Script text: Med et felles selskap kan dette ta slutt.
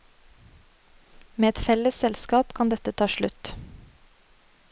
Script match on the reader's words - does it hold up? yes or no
yes